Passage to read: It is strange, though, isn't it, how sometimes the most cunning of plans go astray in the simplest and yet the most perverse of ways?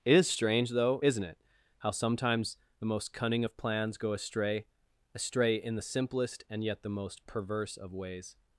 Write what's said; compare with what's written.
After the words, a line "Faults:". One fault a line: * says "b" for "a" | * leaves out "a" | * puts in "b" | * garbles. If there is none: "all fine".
It is strange, though, isn't it, how sometimes the most cunning of plans go astray astray in the simplest and yet the most perverse of ways?
Faults:
* puts in "astray"